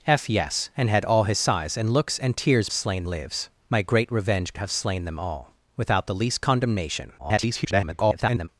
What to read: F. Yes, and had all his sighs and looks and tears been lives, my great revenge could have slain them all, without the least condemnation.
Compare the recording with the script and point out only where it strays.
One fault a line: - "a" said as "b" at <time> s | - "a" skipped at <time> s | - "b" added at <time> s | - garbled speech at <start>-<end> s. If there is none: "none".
- "been" said as "slain" at 2.7 s
- "could" skipped at 4.5 s
- garbled speech at 7.2-8.5 s